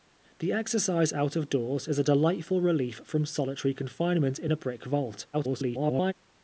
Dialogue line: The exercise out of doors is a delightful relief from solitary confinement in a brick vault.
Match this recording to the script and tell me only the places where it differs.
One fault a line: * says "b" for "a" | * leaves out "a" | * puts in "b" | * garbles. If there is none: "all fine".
* garbles